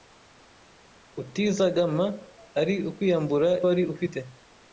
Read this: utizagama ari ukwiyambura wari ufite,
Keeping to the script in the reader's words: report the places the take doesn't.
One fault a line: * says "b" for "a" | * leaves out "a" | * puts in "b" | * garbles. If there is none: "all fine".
all fine